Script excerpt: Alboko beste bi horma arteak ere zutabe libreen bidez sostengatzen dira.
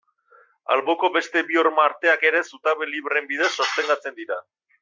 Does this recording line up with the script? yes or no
yes